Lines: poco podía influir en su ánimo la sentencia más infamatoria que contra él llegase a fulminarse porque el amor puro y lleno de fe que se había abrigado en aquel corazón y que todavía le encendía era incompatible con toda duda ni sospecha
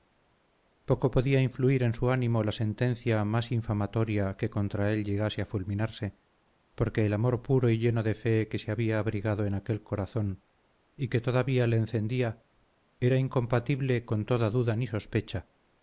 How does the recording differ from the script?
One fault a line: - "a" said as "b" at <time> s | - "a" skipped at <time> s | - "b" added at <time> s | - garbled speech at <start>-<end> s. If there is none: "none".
none